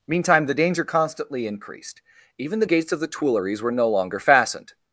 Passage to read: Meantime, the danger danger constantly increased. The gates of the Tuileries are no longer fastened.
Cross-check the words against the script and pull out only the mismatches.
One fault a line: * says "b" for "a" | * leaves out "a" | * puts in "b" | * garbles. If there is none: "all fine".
* leaves out "danger"
* puts in "Even"
* says "were" for "are"